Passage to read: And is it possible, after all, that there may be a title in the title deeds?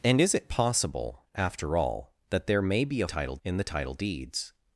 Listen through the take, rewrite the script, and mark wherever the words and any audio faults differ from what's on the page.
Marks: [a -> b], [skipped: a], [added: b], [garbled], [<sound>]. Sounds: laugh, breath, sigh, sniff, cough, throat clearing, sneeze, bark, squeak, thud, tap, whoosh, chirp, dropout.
And is it possible, after all, that there may be a title in the title deeds?